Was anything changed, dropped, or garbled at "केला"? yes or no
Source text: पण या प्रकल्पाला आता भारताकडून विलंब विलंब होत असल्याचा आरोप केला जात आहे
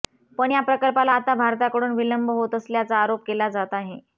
no